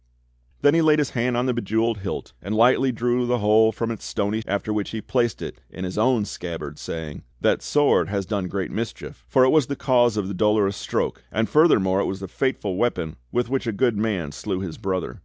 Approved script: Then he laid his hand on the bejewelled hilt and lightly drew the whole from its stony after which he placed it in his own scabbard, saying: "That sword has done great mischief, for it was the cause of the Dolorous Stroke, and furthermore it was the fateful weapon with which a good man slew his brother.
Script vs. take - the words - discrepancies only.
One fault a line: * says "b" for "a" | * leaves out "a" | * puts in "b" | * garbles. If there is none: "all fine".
all fine